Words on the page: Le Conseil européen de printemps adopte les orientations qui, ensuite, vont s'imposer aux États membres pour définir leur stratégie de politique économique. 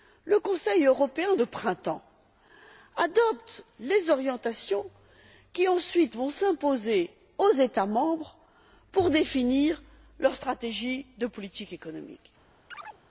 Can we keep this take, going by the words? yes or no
yes